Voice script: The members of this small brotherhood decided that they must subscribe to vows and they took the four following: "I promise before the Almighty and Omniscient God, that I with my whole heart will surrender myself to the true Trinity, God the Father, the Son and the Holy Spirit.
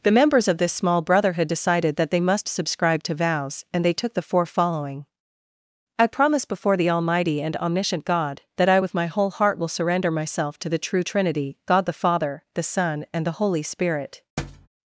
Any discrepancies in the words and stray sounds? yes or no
yes